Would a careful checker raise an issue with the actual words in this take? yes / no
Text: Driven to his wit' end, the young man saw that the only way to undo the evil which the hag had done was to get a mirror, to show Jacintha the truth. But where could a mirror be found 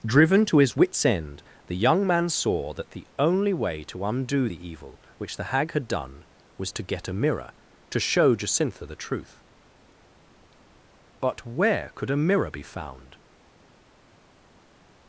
yes